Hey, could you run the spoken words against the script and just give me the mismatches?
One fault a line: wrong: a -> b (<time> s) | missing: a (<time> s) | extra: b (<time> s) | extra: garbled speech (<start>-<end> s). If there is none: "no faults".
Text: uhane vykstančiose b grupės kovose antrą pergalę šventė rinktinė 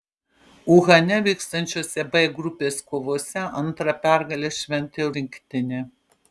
no faults